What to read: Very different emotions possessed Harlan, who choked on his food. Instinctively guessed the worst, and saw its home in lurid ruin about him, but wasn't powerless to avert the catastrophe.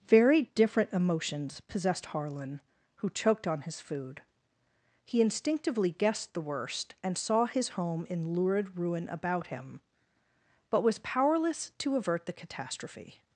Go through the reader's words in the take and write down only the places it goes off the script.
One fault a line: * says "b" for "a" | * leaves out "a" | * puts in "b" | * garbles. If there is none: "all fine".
* puts in "He"
* says "his" for "its"
* says "was" for "wasn't"